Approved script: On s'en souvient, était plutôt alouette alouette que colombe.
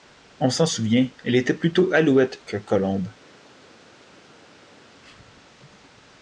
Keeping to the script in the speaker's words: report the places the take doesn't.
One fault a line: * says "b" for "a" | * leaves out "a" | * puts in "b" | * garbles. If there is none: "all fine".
* puts in "elle"
* leaves out "alouette"